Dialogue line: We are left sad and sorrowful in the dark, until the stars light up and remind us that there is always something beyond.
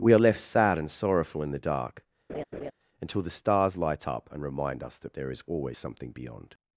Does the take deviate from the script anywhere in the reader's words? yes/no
no